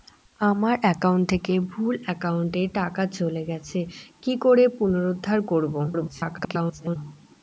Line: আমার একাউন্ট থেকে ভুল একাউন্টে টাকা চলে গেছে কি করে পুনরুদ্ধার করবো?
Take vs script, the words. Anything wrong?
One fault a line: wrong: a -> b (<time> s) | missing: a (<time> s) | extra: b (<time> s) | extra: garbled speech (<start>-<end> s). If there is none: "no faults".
extra: garbled speech (5.9-7.0 s)